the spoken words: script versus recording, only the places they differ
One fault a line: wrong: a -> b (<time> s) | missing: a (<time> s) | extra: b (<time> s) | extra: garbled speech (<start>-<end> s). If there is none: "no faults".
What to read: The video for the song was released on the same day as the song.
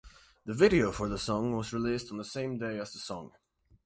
no faults